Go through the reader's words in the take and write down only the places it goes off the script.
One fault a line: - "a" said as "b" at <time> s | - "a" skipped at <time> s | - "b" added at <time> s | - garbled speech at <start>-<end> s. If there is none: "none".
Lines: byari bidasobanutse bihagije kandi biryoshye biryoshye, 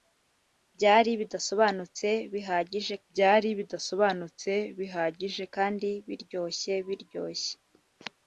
- "byari bidasobanutse bihagije" added at 3.1 s